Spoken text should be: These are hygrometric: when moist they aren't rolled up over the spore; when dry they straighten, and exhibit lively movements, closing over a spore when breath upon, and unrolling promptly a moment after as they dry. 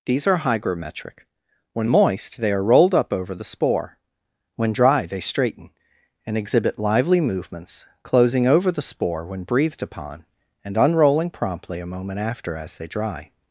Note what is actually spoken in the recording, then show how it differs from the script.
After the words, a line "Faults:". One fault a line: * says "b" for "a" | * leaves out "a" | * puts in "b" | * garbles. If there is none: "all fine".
These are hygrometric: when moist they are rolled up over the spore; when dry they straighten, and exhibit lively movements, closing over the spore when breathed upon, and unrolling promptly a moment after as they dry.
Faults:
* says "are" for "aren't"
* says "the" for "a"
* says "breathed" for "breath"